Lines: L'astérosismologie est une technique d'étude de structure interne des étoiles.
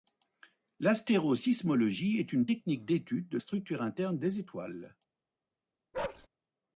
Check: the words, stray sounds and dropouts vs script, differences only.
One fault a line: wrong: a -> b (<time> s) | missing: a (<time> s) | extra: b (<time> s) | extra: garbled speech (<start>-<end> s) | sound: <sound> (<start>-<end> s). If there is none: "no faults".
sound: bark (5.9-6.3 s)